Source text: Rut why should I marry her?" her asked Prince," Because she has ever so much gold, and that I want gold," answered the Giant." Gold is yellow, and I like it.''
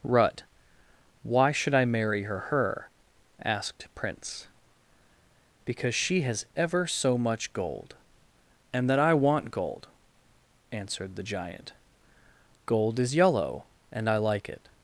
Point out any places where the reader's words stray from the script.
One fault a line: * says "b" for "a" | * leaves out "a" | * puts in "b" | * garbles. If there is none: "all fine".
all fine